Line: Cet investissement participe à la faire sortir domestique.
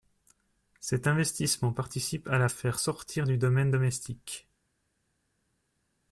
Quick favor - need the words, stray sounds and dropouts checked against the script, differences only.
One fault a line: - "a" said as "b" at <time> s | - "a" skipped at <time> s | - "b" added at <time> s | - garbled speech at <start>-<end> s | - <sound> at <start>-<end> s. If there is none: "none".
- "du domaine" added at 3.2 s